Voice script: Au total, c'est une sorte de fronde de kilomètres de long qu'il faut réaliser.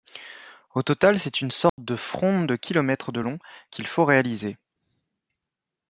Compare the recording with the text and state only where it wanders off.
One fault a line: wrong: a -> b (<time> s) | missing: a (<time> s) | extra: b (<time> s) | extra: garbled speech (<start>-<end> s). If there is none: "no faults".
no faults